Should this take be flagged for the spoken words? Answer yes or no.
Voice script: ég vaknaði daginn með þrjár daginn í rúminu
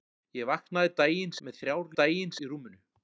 no